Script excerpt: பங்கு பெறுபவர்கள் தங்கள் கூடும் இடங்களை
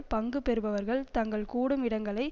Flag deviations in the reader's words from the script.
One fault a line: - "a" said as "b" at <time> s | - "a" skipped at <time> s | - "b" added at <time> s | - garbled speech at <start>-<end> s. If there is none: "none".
none